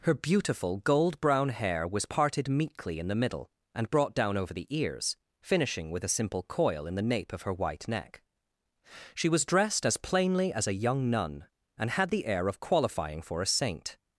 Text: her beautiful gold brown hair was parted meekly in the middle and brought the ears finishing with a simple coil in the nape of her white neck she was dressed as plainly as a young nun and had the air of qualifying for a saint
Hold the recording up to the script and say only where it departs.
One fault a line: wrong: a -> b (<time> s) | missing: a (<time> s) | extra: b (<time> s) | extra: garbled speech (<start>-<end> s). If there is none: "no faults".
extra: down over (4.2 s)